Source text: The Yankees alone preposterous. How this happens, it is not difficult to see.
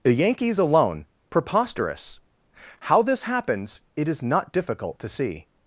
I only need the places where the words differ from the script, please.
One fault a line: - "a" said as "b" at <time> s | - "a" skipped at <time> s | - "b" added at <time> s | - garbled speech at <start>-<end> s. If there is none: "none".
none